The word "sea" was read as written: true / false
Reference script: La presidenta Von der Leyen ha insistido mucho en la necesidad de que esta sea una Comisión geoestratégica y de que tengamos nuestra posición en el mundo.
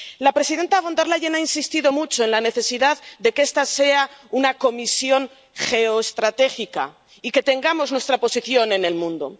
true